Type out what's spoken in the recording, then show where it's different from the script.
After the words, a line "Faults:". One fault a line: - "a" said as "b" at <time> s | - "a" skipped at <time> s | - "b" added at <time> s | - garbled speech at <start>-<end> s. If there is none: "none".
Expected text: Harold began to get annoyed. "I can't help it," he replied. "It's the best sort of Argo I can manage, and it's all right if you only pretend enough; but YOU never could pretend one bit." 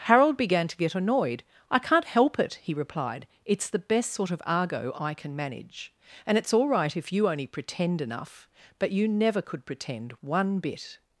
Harold began to get annoyed. "I can't help it," he replied. "It's the best sort of Argo I can manage, and it's all right if you only pretend enough; but YOU never could pretend one bit."
Faults:
none